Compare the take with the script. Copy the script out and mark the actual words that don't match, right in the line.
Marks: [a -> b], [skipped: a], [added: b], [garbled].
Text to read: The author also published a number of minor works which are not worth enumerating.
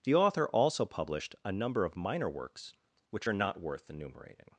The author also published a number of minor works which are not worth enumerating.